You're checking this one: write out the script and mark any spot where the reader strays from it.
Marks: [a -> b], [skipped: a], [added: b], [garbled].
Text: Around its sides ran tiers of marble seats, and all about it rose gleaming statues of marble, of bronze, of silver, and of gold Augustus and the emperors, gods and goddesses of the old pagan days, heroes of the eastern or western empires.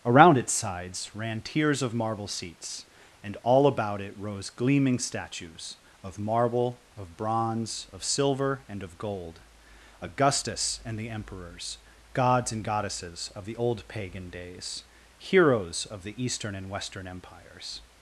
Around its sides ran tiers of marble seats, and all about it rose gleaming statues of marble, of bronze, of silver, and of gold Augustus and the emperors, gods and goddesses of the old pagan days, heroes of the eastern [or -> and] western empires.